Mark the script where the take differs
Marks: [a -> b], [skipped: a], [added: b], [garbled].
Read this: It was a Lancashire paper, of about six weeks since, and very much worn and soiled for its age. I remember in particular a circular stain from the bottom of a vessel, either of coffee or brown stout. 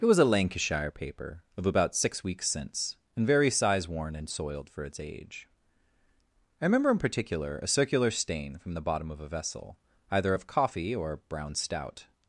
It was a Lancashire paper, of about six weeks since, and very [much -> size] worn and soiled for its age. I remember in particular a circular stain from the bottom of a vessel, either of coffee or brown stout.